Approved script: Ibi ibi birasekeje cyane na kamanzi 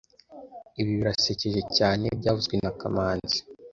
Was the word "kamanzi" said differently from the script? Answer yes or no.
no